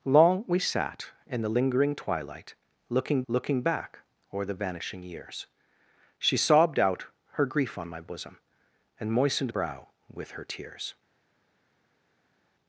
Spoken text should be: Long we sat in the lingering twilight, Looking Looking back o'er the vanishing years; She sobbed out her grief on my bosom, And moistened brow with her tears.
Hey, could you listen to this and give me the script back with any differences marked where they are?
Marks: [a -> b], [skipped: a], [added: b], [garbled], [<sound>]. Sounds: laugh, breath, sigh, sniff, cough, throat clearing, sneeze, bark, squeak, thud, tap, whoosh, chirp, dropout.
Long we sat in the lingering twilight, Looking Looking back o'er the vanishing years; She sobbed out her grief on my bosom, And moistened brow with her tears.